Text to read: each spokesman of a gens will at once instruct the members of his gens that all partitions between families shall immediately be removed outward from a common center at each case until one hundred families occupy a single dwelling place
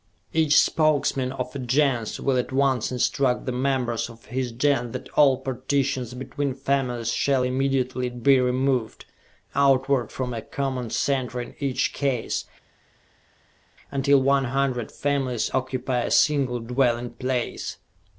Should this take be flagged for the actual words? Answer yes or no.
yes